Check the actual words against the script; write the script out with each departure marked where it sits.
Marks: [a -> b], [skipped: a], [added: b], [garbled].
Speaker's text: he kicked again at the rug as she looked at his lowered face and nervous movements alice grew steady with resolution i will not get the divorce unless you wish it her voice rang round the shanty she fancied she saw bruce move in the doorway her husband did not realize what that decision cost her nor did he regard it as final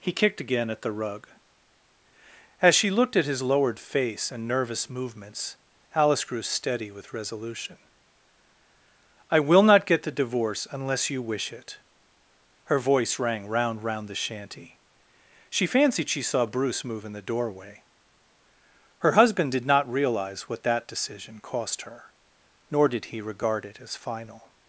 he kicked again at the rug as she looked at his lowered face and nervous movements alice grew steady with resolution i will not get the divorce unless you wish it her voice rang round [added: round] the shanty she fancied she saw bruce move in the doorway her husband did not realize what that decision cost her nor did he regard it as final